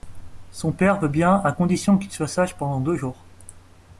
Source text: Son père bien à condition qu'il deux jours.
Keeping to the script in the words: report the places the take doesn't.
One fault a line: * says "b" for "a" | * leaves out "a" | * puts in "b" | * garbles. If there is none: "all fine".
* puts in "veut"
* puts in "soit sage pendant"